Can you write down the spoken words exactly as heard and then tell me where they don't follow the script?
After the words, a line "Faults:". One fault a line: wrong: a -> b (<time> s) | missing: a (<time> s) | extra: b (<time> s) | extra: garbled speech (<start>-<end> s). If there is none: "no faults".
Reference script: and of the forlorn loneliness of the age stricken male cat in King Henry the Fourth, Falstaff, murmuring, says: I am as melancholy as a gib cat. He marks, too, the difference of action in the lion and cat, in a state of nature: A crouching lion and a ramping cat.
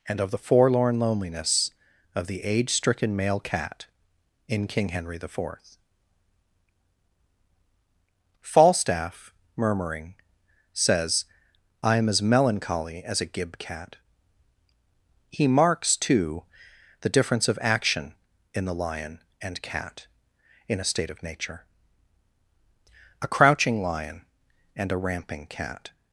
and of the forlorn loneliness of the age stricken male cat in King Henry the Fourth, Falstaff, murmuring, says: I am as melancholy as a gib cat. He marks, too, the difference of action in the lion and cat, in a state of nature: A crouching lion and a ramping cat.
Faults:
no faults